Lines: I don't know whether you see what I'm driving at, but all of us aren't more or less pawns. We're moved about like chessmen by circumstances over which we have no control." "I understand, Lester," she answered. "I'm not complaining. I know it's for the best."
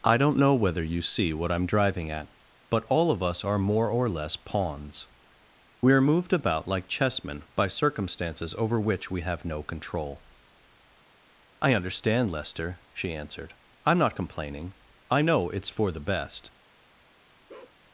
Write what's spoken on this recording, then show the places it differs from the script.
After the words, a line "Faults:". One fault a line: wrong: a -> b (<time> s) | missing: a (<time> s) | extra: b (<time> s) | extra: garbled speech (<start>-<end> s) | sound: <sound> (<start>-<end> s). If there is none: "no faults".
I don't know whether you see what I'm driving at, but all of us are more or less pawns. We're moved about like chessmen by circumstances over which we have no control." "I understand, Lester," she answered. "I'm not complaining. I know it's for the best."
Faults:
wrong: aren't -> are (3.4 s)
sound: bark (17.5-17.8 s)